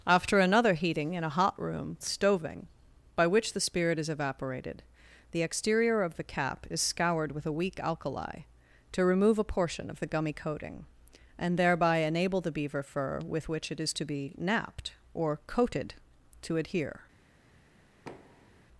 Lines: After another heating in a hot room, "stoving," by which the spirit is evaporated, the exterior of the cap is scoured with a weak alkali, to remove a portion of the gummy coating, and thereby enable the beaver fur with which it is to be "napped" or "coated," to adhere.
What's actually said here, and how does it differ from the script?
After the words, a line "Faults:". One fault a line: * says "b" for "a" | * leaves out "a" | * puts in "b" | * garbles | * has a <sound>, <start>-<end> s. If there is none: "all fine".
After another heating in a hot room, "stoving," by which the spirit is evaporated, the exterior of the cap is scoured with a weak alkali, to remove a portion of the gummy coating, and thereby enable the beaver fur with which it is to be "napped" or "coated," to adhere.
Faults:
* has a thud, 18.1-18.7 s